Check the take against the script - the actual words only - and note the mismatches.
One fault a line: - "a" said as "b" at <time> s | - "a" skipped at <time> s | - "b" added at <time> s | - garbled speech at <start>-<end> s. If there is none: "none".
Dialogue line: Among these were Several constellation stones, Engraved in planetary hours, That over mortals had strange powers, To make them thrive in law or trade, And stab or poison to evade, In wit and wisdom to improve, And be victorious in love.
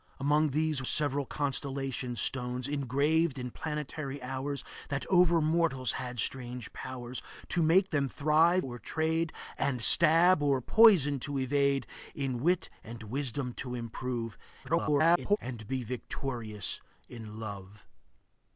- "were" skipped at 0.8 s
- "in law" skipped at 8.6 s
- garbled speech at 14.6-15.4 s